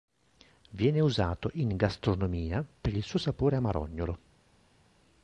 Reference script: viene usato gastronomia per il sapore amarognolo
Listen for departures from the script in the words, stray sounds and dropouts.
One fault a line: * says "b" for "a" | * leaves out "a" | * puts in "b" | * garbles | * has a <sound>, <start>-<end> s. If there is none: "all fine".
* puts in "in"
* puts in "suo"